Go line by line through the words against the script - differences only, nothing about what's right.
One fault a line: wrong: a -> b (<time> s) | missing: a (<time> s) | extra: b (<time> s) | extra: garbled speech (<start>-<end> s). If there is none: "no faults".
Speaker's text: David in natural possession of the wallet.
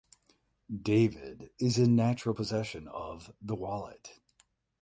extra: is (1.6 s)